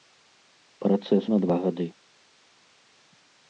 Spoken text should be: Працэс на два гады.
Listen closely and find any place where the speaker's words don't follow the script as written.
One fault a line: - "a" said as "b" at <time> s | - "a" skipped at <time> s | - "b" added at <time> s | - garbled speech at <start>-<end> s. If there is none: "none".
none